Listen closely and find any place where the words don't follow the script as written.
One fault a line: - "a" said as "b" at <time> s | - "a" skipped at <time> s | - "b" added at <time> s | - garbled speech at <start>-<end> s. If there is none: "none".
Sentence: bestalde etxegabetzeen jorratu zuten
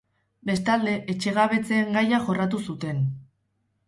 - "gaia" added at 2.0 s